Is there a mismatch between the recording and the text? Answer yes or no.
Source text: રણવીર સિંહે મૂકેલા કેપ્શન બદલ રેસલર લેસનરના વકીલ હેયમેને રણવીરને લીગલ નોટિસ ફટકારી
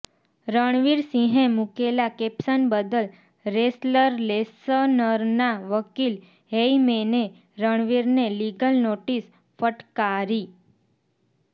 no